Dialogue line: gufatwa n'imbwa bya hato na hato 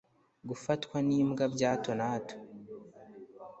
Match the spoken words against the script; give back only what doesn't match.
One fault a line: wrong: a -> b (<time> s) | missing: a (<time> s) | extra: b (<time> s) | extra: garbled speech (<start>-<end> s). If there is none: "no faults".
no faults